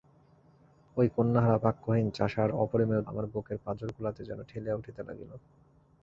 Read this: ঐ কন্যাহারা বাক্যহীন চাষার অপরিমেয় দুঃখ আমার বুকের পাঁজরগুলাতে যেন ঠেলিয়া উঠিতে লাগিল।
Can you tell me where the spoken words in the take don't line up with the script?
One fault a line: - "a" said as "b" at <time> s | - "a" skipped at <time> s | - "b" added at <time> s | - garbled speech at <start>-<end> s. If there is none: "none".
- "দুঃখ" skipped at 3.0 s